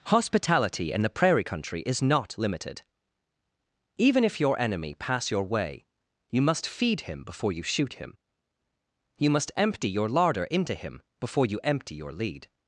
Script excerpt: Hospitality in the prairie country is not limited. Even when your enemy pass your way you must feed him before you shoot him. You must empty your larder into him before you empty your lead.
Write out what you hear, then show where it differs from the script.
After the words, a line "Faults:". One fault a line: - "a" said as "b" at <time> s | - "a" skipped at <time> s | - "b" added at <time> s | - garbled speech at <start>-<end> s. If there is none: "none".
Hospitality in the prairie country is not limited. Even if your enemy pass your way you must feed him before you shoot him. You must empty your larder into him before you empty your lead.
Faults:
- "when" said as "if" at 4.2 s